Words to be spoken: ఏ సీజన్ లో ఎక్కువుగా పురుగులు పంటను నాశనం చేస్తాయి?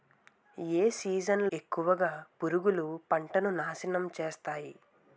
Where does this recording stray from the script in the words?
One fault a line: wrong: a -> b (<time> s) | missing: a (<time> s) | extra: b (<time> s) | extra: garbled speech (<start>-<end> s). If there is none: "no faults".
missing: లో (1.4 s)